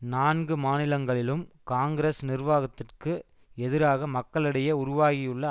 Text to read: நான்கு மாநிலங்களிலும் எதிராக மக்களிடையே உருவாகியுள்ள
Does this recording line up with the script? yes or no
no